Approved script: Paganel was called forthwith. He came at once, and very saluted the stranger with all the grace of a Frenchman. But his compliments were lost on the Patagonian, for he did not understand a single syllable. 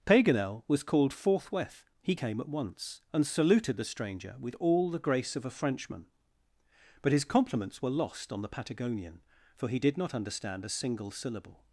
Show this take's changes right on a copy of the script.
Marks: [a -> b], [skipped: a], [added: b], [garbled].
Paganel was called forthwith. He came at once, and [skipped: very] saluted the stranger with all the grace of a Frenchman. But his compliments were lost on the Patagonian, for he did not understand a single syllable.